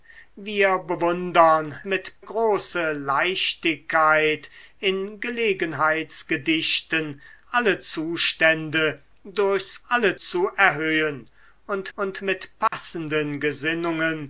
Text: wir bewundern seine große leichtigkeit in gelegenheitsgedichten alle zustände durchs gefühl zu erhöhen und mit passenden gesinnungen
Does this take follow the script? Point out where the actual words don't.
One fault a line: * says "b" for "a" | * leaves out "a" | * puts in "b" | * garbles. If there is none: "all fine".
* says "mit" for "seine"
* says "alle" for "gefühl"
* puts in "und"